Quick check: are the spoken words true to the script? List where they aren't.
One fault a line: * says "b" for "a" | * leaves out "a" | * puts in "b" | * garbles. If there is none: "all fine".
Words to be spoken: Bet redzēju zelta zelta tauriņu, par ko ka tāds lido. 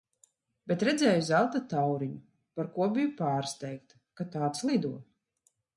* leaves out "zelta"
* puts in "biju pārsteigta"